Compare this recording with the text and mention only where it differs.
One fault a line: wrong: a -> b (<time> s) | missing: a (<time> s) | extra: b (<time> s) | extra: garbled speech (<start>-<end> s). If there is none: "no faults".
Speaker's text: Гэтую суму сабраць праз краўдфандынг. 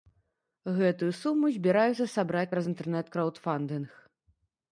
extra: збіраюцца (1.6 s)
extra: інтэрнэт (2.7 s)